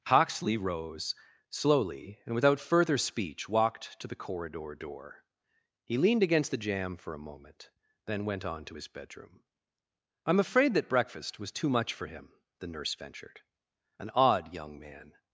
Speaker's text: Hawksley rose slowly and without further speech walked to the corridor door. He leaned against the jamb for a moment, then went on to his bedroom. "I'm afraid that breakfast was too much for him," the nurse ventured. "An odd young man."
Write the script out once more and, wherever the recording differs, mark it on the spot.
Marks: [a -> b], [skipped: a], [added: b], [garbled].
Hawksley rose slowly and without further speech walked to the corridor door. He leaned against the jamb for a moment, then went on to his bedroom. "I'm afraid that breakfast was too much for him," the nurse ventured. "An odd young man."